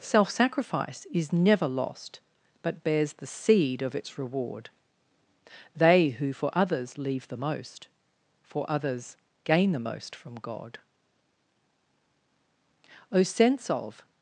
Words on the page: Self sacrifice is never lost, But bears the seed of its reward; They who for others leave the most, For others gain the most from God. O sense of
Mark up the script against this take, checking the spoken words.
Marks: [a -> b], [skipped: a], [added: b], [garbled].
Self sacrifice is never lost, But bears the seed of its reward; They who for others leave the most, For others gain the most from God. O sense of